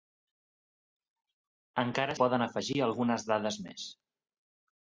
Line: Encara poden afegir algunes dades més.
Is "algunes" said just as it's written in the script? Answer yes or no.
yes